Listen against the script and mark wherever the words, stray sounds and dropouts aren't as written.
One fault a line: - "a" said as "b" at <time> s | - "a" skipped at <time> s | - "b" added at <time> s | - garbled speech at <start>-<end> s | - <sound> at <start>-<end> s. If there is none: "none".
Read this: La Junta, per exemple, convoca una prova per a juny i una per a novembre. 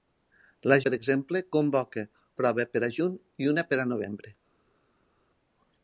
- "Junta" skipped at 0.8 s
- "una" skipped at 2.0 s